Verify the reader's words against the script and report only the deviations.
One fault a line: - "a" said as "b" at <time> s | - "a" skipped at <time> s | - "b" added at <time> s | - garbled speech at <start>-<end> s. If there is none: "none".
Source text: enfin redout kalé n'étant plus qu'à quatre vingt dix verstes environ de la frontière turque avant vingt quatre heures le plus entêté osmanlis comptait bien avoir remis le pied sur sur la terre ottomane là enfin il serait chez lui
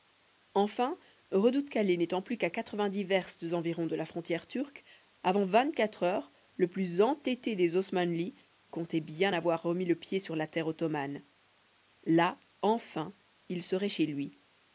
- "des" added at 7.5 s
- "sur" skipped at 10.4 s